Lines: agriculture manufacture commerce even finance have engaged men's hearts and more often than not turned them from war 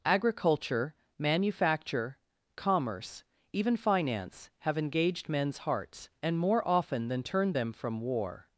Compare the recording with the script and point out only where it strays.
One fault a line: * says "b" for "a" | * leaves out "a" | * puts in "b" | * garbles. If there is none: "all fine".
* leaves out "not"